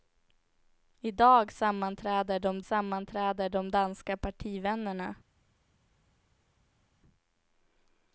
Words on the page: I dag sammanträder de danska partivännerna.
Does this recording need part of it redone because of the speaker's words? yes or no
yes